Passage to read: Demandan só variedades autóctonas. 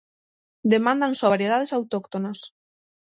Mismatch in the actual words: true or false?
false